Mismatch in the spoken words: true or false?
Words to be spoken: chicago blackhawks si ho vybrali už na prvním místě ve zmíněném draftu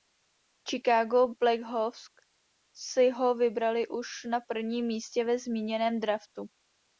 false